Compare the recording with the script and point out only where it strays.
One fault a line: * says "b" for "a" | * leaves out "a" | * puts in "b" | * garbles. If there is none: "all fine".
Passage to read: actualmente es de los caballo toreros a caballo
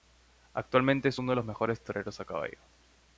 * puts in "uno"
* says "mejores" for "caballo"